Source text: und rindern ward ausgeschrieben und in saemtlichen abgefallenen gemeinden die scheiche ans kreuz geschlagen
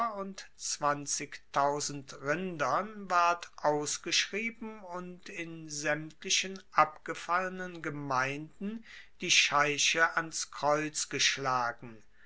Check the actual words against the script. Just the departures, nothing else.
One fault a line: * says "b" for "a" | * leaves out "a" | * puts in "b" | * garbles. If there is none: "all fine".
all fine